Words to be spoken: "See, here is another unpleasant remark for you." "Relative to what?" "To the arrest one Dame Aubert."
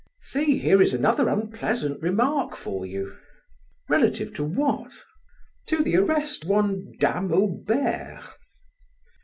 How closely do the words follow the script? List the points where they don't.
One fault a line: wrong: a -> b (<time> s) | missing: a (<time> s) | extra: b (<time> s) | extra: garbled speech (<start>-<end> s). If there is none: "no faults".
no faults